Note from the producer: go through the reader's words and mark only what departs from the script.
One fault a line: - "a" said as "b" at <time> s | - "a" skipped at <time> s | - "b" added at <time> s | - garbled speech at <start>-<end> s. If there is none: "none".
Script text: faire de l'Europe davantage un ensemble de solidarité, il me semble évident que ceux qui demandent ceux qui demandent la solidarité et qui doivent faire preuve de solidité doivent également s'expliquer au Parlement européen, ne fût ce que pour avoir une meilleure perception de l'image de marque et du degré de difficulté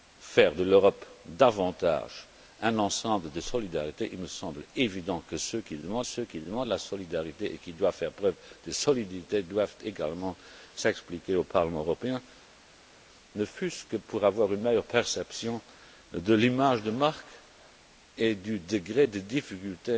none